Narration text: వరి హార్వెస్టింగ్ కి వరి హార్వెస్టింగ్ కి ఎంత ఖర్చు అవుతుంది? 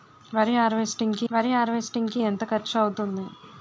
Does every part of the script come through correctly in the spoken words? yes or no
yes